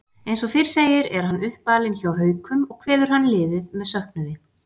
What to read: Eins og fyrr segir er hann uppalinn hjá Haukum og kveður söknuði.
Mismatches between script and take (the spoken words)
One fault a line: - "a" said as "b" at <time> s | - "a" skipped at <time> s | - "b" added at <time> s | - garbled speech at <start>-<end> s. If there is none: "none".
- "hann liðið með" added at 3.2 s